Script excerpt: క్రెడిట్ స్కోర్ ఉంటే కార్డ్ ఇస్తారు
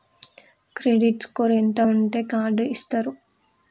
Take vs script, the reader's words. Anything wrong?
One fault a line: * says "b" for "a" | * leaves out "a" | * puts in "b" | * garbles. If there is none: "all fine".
* puts in "ఎంత"